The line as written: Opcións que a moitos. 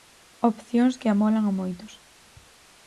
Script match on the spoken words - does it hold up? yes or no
no